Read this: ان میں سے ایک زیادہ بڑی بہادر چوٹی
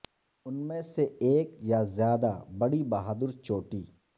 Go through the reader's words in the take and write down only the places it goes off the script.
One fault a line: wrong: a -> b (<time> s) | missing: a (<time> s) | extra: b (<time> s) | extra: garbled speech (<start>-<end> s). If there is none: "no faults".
extra: یا (1.6 s)